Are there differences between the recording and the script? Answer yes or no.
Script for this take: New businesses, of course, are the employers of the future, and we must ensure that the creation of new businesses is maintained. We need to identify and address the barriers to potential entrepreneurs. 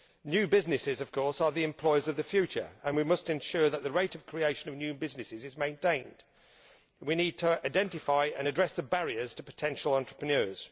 yes